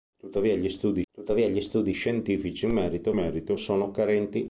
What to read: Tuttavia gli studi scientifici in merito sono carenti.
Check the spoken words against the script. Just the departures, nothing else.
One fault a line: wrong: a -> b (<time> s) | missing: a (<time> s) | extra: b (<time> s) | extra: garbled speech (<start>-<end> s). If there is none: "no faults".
extra: tuttavia gli studi (1.1 s)
extra: merito (3.1 s)